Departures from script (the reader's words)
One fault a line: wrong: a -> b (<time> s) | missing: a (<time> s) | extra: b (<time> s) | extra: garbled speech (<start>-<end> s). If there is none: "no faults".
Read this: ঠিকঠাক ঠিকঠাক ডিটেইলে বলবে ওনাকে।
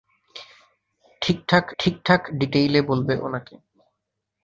no faults